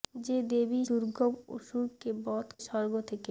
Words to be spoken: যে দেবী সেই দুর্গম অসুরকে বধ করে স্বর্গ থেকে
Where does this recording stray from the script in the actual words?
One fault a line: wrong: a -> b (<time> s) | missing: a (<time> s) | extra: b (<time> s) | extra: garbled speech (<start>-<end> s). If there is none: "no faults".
missing: সেই (0.8 s)
missing: করে (2.5 s)